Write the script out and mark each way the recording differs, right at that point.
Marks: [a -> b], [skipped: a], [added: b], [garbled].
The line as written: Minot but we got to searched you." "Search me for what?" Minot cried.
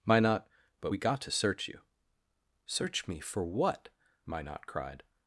Minot but we got to [searched -> search] you." "Search me for what?" Minot cried.